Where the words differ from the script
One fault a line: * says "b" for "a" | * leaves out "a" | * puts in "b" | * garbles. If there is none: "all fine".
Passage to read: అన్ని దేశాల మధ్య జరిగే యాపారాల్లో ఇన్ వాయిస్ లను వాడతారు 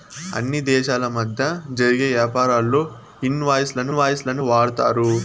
* puts in "వాయిస్ లను"